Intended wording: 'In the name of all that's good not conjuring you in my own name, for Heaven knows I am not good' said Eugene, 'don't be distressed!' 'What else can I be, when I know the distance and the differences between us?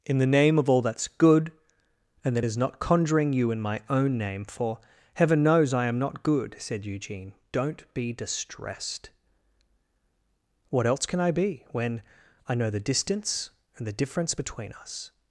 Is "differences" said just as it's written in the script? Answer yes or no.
no